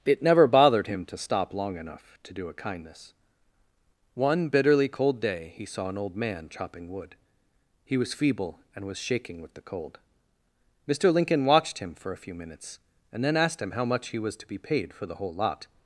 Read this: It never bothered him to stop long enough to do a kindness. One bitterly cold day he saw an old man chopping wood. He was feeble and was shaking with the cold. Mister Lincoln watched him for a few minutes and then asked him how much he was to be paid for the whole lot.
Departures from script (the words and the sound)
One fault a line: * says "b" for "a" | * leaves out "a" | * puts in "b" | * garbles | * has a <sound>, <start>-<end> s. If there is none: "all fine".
all fine